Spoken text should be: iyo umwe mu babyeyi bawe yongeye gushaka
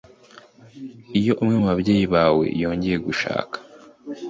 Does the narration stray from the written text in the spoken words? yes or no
no